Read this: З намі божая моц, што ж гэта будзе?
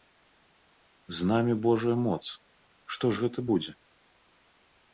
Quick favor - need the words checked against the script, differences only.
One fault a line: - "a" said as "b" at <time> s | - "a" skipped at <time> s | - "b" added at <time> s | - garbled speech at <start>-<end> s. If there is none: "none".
none